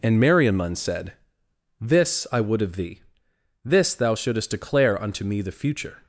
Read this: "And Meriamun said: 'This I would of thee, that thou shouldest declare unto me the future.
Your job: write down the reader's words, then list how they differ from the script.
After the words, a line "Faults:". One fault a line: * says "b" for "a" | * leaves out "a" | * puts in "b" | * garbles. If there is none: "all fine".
"And Meriamun said: 'This I would of thee, this thou shouldest declare unto me the future.
Faults:
* says "this" for "that"